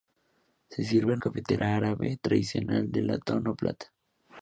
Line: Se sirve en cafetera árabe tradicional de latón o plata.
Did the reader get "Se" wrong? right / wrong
right